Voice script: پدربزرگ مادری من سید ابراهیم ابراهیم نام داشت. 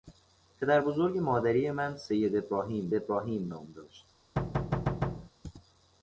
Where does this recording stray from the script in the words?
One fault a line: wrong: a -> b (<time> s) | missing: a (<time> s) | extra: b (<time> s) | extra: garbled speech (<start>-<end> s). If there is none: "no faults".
no faults